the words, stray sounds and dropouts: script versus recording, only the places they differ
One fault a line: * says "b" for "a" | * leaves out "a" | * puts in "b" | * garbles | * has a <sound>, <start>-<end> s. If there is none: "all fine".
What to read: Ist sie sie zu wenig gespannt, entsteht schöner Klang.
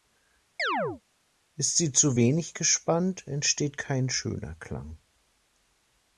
* has a chirp, 0.6-1.0 s
* leaves out "sie"
* puts in "kein"